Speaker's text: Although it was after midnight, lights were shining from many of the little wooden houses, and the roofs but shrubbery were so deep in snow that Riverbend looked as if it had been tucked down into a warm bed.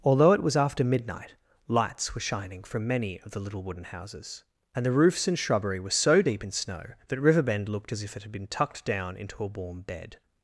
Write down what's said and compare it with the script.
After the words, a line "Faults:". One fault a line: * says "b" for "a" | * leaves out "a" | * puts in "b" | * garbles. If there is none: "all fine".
Although it was after midnight, lights were shining from many of the little wooden houses, and the roofs and shrubbery were so deep in snow that Riverbend looked as if it had been tucked down into a warm bed.
Faults:
* says "and" for "but"